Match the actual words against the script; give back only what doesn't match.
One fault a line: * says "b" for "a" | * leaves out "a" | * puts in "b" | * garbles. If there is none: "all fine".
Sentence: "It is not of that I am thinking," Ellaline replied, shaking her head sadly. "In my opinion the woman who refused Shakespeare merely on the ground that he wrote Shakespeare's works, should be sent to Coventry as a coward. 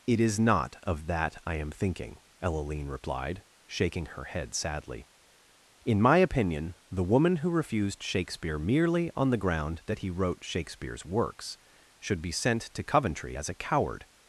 all fine